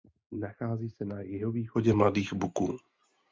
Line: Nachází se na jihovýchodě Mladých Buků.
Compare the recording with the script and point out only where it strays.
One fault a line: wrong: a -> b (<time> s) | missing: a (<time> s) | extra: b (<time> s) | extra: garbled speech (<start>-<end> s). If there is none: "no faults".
no faults